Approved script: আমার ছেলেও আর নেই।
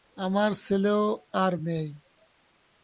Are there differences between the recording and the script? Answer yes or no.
no